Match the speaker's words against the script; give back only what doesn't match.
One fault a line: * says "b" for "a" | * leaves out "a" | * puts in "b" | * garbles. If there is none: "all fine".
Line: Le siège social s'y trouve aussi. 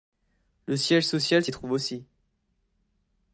all fine